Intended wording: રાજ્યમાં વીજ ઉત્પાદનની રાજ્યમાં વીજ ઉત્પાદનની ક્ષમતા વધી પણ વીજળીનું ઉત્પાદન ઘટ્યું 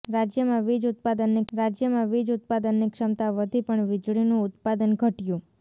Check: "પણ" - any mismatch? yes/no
no